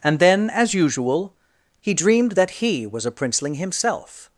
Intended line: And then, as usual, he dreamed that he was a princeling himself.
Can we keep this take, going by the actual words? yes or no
yes